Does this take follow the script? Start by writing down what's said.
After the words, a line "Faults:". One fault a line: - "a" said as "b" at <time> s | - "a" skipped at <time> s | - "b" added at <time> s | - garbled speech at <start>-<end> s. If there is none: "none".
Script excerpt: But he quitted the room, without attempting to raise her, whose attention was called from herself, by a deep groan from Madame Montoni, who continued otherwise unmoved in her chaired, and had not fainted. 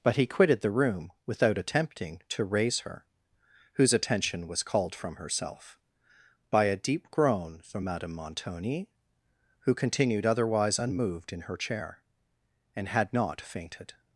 But he quitted the room, without attempting to raise her, whose attention was called from herself, by a deep groan from Madame Montoni, who continued otherwise unmoved in her chair, and had not fainted.
Faults:
- "chaired" said as "chair" at 11.6 s